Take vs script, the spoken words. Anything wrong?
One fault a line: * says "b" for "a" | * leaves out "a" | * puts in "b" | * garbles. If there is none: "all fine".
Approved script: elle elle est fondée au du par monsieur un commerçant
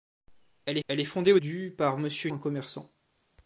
all fine